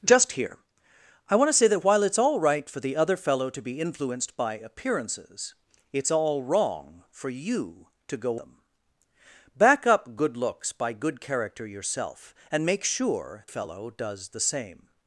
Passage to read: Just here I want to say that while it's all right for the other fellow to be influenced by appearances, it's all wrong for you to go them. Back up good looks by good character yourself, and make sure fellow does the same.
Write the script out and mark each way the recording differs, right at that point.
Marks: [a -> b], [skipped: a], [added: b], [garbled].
Just here I want to say that while it's all right for the other fellow to be influenced by appearances, it's all wrong for you to go them. Back up good looks by good character yourself, and make sure fellow does the same.